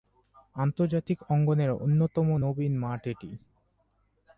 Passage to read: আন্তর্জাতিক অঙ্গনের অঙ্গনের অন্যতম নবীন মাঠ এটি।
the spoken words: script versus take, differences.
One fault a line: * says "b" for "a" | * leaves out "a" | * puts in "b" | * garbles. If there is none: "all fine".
* leaves out "অঙ্গনের"